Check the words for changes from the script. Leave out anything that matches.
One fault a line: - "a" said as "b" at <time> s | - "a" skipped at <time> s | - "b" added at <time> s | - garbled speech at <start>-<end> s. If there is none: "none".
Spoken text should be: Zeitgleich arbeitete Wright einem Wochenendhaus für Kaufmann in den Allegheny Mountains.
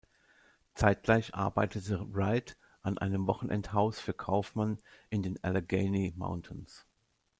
- "an" added at 2.8 s